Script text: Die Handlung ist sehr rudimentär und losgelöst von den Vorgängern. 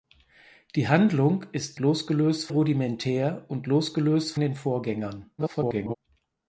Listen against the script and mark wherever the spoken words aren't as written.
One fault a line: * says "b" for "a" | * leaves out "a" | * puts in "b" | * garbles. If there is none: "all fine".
* says "losgelöst" for "sehr"
* leaves out "von"
* garbles